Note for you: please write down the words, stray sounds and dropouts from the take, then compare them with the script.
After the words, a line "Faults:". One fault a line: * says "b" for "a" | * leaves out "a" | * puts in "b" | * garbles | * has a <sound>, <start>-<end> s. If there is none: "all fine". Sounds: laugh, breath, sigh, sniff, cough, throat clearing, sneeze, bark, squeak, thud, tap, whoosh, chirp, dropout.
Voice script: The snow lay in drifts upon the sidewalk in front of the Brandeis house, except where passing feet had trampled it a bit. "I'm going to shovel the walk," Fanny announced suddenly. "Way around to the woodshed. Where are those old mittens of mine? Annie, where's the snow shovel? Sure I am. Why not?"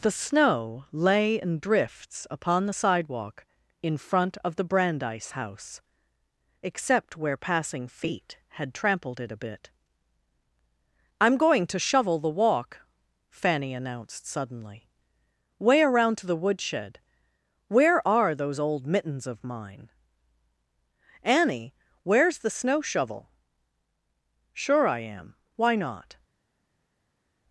The snow lay in drifts upon the sidewalk in front of the Brandeis house, except where passing feet had trampled it a bit. "I'm going to shovel the walk," Fanny announced suddenly. "Way around to the woodshed. Where are those old mittens of mine? Annie, where's the snow shovel? Sure I am. Why not?"
Faults:
all fine